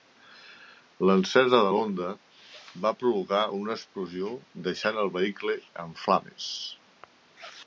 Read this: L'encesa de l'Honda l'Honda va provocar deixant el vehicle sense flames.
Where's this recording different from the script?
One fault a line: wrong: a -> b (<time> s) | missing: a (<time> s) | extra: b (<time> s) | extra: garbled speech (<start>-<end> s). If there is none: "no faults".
missing: l'Honda (2.1 s)
extra: una explosió (3.6 s)
wrong: sense -> en (5.9 s)